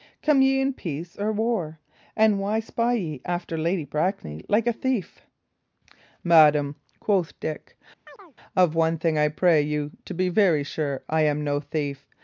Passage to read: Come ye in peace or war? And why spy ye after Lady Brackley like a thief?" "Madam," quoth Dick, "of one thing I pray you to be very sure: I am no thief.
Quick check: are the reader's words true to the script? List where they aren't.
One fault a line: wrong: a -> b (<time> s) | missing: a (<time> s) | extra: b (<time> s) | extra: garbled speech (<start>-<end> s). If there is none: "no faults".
no faults